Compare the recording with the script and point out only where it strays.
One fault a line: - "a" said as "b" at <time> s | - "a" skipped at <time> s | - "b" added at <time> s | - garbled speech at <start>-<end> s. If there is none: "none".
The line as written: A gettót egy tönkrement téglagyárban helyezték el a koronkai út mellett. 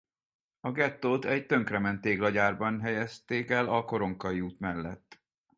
none